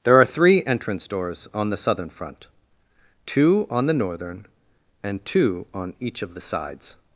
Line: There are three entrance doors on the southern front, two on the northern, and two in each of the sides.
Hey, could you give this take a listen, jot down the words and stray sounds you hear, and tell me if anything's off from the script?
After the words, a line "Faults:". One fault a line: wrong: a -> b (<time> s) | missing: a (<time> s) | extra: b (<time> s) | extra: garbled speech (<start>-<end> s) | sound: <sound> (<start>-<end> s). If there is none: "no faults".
There are three entrance doors on the southern front, two on the northern, and two on each of the sides.
Faults:
wrong: in -> on (5.8 s)